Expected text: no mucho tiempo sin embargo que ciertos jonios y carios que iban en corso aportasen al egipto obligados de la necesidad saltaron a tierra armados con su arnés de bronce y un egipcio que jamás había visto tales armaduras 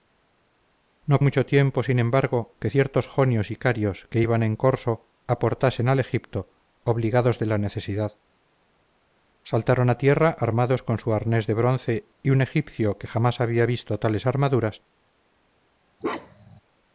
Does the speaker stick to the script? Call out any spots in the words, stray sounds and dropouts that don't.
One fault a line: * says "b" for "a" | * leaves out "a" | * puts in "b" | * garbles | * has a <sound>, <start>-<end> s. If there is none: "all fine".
* has a bark, 16.0-16.6 s